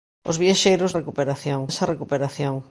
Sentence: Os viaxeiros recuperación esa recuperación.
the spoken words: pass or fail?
pass